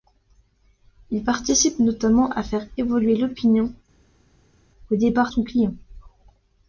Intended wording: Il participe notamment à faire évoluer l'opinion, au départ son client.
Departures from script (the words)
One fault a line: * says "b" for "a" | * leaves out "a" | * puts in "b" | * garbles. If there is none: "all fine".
all fine